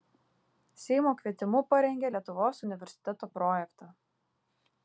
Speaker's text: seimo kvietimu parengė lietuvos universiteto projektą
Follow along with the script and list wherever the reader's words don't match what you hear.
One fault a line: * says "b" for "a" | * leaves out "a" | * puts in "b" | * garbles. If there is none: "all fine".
all fine